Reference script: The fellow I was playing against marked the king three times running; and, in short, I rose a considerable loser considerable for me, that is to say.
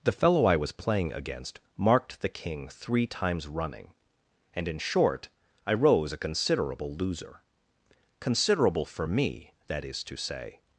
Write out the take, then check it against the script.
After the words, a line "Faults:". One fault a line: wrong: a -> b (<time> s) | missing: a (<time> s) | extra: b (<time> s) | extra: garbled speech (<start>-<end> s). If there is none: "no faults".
The fellow I was playing against marked the king three times running; and, in short, I rose a considerable loser considerable for me, that is to say.
Faults:
no faults